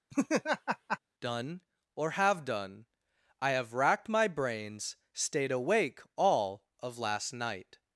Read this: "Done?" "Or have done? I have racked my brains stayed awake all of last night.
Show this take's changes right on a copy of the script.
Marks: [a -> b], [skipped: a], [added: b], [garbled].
"Done?" "Or have done? I have racked my brains stayed awake all of last night.